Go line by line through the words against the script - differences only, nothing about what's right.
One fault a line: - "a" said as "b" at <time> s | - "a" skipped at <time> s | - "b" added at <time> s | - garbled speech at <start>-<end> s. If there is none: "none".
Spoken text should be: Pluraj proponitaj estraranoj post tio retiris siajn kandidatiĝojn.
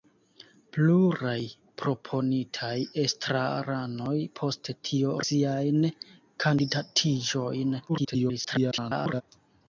- "retiris" skipped at 5.2 s
- garbled speech at 7.9-9.2 s